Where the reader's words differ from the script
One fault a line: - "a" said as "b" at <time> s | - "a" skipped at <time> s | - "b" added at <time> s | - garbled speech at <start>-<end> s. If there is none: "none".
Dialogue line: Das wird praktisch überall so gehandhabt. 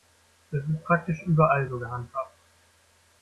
none